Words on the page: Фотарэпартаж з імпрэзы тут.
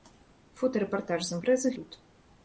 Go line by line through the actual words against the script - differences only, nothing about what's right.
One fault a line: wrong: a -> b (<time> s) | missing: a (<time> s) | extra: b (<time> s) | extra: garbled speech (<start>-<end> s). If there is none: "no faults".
no faults